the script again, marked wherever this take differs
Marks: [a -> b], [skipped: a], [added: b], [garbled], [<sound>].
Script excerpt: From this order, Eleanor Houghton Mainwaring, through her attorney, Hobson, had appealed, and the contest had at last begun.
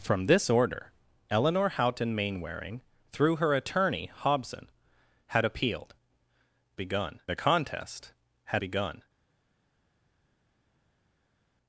From this order, Eleanor Houghton Mainwaring, through her attorney, Hobson, had appealed, [and -> begun] the contest had [skipped: at last] begun.